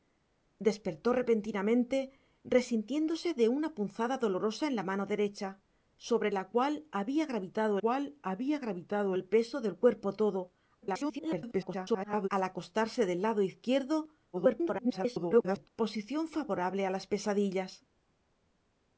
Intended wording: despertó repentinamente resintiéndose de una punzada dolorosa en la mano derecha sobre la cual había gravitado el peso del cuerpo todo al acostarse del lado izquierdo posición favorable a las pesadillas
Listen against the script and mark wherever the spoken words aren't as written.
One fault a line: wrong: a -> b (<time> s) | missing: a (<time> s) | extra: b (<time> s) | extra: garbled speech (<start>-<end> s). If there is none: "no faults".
extra: cual había gravitado (7.8 s)
extra: garbled speech (10.8-12.3 s)
extra: garbled speech (14.3-15.7 s)